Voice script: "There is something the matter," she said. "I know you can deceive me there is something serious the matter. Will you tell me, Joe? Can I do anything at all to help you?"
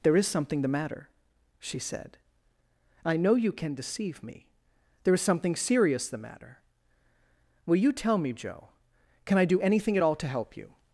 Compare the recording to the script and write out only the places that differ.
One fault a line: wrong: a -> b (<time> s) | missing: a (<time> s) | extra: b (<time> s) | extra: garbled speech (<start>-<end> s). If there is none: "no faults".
no faults